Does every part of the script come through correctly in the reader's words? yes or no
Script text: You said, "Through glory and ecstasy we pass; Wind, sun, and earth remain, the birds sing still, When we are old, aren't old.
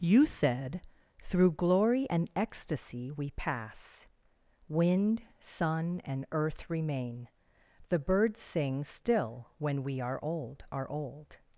no